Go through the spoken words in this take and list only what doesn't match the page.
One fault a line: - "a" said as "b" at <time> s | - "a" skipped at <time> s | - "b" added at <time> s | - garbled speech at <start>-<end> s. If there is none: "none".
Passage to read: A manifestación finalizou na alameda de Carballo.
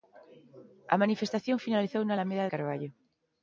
- "de" skipped at 2.4 s